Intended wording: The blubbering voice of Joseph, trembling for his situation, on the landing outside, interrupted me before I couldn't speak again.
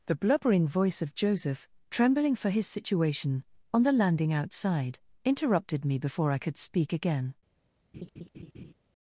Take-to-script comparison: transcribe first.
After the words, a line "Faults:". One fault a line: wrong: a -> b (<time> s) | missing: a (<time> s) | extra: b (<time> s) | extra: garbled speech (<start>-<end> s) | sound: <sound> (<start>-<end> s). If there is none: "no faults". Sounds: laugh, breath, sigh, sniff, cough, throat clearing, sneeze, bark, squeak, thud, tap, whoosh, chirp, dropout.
The blubbering voice of Joseph, trembling for his situation, on the landing outside, interrupted me before I could speak again.
Faults:
wrong: couldn't -> could (6.4 s)
sound: laugh (7.9-8.7 s)